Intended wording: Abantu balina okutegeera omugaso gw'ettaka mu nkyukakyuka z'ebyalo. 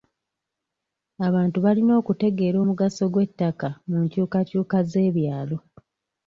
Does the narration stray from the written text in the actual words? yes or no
no